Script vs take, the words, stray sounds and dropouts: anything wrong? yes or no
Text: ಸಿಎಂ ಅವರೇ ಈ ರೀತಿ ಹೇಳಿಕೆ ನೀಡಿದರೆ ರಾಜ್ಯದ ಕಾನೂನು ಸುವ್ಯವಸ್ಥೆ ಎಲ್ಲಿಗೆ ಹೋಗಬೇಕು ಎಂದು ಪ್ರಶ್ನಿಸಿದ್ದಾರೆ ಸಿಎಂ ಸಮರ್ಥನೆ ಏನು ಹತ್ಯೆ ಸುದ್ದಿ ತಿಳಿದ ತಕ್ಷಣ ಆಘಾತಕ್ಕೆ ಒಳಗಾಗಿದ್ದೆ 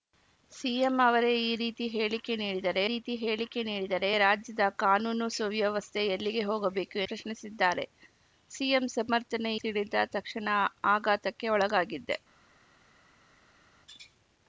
yes